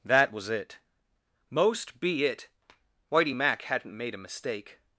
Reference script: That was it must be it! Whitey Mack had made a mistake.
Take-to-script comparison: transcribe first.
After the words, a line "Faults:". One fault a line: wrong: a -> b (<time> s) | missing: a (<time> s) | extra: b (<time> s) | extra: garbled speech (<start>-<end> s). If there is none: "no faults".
That was it most be it! Whitey Mack hadn't made a mistake.
Faults:
wrong: must -> most (1.5 s)
wrong: had -> hadn't (3.6 s)